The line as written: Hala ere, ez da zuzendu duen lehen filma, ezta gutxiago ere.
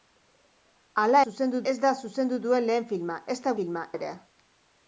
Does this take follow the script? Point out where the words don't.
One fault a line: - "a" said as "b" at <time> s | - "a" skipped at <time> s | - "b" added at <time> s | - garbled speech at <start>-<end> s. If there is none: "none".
- "ere" said as "zuzendu" at 1.2 s
- "gutxiago" said as "filma" at 3.6 s